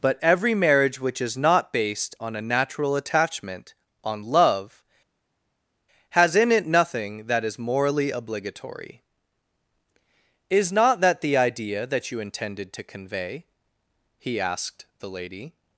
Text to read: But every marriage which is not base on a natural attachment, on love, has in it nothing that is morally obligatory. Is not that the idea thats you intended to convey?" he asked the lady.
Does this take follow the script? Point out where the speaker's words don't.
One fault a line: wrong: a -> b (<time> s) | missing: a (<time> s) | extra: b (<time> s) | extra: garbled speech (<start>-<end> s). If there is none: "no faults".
wrong: base -> based (1.7 s)
wrong: thats -> that (11.9 s)